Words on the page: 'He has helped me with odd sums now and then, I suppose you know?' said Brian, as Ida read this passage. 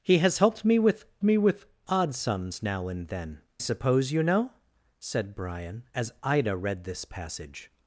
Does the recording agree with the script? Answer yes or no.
no